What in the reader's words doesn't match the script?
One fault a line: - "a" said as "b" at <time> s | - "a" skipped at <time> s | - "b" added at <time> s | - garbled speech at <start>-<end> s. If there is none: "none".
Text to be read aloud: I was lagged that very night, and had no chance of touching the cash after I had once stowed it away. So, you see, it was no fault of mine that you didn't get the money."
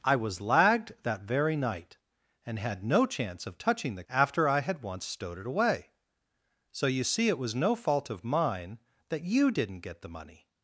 - "cash" skipped at 4.0 s